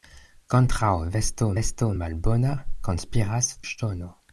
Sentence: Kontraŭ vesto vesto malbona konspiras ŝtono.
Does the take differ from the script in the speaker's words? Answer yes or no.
no